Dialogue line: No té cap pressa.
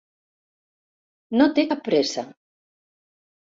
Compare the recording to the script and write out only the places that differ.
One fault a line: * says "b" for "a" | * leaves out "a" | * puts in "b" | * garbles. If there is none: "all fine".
all fine